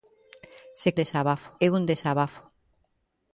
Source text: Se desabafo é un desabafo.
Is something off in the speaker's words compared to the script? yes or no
no